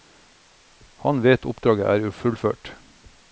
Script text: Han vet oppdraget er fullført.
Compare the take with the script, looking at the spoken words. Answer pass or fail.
pass